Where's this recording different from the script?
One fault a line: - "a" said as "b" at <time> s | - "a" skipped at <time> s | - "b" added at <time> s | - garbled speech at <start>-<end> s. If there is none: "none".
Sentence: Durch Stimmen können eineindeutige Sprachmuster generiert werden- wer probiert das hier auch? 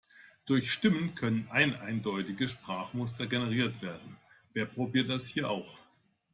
none